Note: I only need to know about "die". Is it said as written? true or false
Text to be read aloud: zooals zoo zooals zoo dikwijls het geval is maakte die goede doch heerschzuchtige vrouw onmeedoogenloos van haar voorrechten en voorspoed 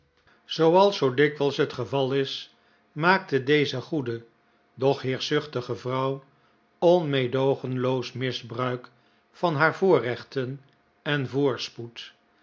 false